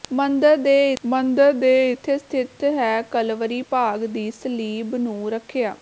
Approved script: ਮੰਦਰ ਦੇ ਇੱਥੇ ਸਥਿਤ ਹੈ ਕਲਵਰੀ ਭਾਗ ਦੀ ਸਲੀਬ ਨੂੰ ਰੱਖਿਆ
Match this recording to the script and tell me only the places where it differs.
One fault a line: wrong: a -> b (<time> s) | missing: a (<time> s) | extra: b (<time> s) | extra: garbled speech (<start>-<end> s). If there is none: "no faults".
extra: ਮੰਦਰ ਦੇ (1.0 s)